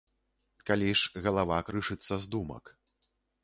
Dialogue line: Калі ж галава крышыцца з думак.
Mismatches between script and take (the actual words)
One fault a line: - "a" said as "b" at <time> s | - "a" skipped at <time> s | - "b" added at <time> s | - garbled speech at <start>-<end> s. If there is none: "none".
none